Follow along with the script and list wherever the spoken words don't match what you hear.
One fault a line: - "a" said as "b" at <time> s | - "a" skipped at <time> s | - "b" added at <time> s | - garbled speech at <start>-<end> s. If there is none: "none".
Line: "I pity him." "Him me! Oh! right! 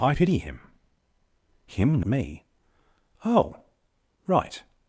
none